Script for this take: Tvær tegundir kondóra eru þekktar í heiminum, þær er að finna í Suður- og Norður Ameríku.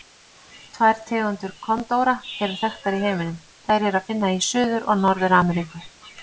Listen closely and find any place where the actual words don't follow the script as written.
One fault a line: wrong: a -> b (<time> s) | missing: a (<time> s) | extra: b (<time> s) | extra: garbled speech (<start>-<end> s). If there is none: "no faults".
no faults